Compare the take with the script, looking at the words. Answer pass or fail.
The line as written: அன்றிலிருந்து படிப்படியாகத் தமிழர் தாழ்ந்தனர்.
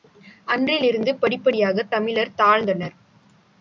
pass